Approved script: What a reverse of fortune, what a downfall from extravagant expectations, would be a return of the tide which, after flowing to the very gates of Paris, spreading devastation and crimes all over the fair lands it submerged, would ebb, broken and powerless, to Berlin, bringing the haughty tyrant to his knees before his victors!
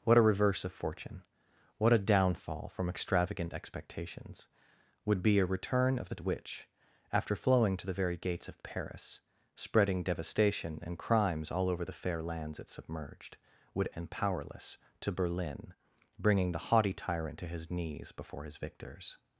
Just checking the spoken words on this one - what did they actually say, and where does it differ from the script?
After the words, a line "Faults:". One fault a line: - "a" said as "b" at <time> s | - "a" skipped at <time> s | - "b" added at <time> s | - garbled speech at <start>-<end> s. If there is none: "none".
What a reverse of fortune, what a downfall from extravagant expectations, would be a return of the which, after flowing to the very gates of Paris, spreading devastation and crimes all over the fair lands it submerged, would and powerless, to Berlin, bringing the haughty tyrant to his knees before his victors!
Faults:
- "tide" skipped at 6.2 s
- "ebb broken" skipped at 13.9 s